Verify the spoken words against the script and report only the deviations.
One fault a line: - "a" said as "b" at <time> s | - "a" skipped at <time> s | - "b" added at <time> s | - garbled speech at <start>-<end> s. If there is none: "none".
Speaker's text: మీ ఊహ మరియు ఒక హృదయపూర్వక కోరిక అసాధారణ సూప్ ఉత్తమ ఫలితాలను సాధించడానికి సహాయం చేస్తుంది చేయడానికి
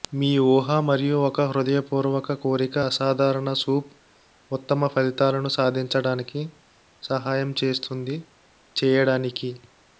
none